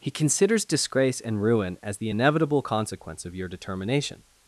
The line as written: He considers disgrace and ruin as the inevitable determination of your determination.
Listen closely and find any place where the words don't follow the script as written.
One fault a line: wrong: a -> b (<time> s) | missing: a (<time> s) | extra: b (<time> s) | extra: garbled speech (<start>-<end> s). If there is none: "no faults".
wrong: determination -> consequence (2.6 s)